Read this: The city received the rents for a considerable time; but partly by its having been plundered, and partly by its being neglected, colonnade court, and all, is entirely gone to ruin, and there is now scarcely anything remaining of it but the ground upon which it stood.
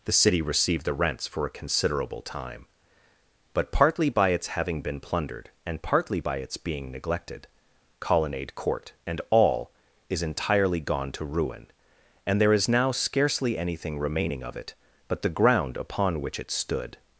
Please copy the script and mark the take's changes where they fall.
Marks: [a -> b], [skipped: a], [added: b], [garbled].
The city received the rents for a considerable time; but partly by its having been plundered, and partly by its being neglected, colonnade court, and all, is entirely gone to ruin, and there is now scarcely anything remaining of it but the ground upon which it stood.